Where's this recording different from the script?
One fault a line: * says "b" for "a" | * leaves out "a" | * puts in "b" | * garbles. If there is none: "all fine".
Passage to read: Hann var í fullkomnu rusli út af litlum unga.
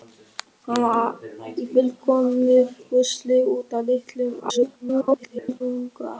* garbles